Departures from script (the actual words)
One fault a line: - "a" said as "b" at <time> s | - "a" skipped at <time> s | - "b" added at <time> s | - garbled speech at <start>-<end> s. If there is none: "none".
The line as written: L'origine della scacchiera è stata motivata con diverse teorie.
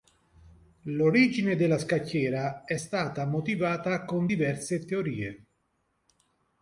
none